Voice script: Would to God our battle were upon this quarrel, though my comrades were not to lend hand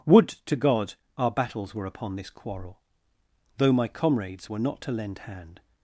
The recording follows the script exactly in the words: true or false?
false